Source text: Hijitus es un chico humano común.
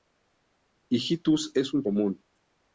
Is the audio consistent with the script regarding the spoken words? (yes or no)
no